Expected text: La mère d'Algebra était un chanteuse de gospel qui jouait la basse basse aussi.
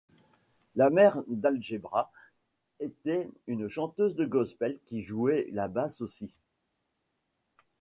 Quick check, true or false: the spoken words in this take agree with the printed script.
false